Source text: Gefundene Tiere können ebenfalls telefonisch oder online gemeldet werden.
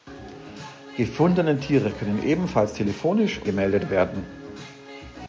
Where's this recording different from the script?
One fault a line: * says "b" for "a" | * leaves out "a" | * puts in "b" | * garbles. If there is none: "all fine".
* leaves out "oder online"